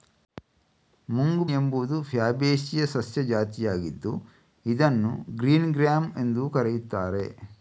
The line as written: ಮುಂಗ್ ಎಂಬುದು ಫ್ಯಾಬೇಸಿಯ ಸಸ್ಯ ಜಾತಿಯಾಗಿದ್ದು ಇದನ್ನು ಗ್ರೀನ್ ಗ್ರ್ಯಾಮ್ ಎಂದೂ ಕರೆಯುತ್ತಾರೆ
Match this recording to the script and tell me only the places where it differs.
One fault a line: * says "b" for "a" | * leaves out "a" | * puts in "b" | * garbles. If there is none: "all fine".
all fine